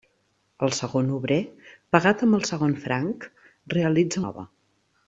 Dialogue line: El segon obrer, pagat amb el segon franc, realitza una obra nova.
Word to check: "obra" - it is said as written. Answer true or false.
false